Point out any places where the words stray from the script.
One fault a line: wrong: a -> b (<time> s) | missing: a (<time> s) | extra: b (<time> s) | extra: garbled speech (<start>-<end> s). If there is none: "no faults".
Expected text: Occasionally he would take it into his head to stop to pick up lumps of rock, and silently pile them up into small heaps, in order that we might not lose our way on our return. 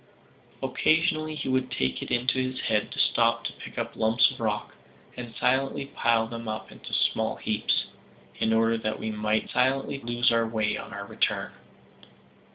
wrong: not -> silently (9.5 s)